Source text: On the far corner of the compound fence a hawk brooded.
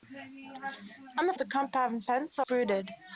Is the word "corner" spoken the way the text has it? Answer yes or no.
no